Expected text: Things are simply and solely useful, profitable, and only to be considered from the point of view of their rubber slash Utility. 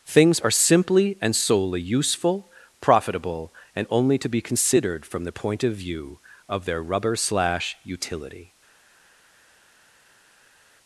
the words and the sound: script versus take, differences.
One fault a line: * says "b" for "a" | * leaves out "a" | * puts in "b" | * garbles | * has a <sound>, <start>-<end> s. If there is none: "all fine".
all fine